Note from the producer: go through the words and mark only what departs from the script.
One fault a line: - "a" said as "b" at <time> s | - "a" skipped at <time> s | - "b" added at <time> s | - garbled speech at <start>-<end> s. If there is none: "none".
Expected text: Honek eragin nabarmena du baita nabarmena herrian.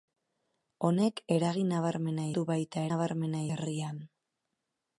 none